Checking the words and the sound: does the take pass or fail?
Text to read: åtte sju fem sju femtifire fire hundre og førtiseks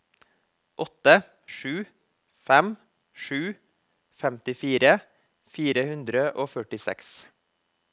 pass